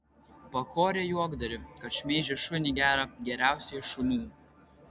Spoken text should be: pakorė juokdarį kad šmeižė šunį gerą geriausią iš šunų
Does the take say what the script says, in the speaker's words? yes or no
yes